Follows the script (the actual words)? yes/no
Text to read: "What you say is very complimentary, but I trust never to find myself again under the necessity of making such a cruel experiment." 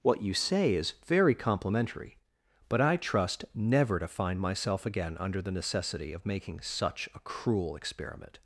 yes